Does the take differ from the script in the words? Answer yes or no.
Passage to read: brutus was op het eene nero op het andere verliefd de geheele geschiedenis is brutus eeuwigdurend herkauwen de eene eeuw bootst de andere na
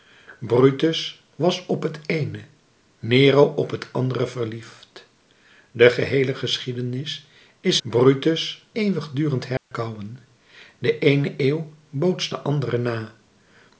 no